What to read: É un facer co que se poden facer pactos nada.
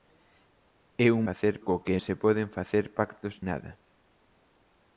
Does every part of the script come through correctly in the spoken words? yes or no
yes